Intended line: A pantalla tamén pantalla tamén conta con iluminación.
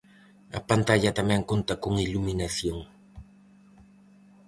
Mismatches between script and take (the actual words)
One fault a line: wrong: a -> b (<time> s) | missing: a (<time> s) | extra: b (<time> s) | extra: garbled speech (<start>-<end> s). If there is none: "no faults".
missing: pantalla tamén (1.4 s)